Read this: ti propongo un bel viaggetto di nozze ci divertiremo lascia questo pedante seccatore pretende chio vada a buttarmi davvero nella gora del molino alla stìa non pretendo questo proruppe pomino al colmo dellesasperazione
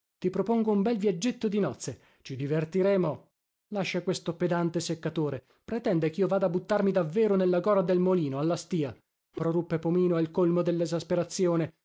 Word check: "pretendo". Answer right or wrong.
wrong